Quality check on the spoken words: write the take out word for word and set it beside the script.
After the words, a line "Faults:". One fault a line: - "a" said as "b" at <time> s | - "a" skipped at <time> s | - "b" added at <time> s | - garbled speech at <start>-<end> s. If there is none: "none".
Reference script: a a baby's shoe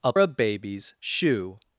a a baby's shoe
Faults:
none